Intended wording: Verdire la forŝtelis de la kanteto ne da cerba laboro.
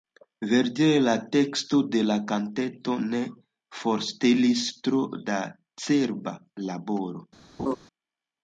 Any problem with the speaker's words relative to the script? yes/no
yes